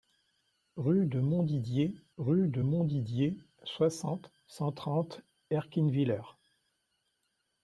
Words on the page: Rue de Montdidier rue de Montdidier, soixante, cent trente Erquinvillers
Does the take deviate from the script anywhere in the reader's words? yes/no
no